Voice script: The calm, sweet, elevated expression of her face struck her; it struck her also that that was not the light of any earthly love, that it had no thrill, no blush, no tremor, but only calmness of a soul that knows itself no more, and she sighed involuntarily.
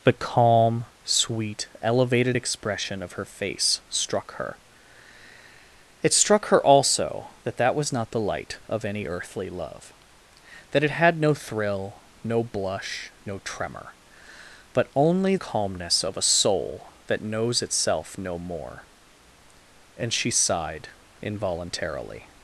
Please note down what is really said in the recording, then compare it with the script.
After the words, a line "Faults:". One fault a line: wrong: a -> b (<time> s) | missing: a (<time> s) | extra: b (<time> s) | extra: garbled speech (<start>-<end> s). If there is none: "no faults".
The calm, sweet, elevated expression of her face struck her; it struck her also that that was not the light of any earthly love, that it had no thrill, no blush, no tremor, but only calmness of a soul that knows itself no more, and she sighed involuntarily.
Faults:
no faults